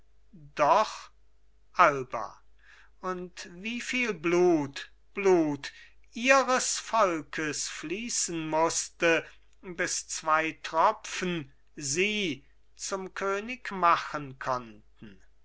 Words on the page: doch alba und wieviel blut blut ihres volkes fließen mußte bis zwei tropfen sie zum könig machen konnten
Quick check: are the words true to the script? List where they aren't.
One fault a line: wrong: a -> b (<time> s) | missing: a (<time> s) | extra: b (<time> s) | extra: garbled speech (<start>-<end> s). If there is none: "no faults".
no faults